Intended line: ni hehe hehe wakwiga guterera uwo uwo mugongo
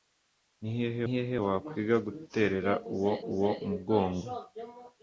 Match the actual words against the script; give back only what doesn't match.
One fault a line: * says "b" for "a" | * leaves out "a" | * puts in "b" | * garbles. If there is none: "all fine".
all fine